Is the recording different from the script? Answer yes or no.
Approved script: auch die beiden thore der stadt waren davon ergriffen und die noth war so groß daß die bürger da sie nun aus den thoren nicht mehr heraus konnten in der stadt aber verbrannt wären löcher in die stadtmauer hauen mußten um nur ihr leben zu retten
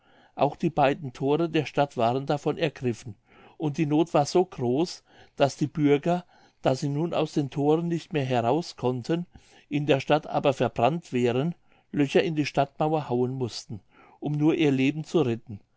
no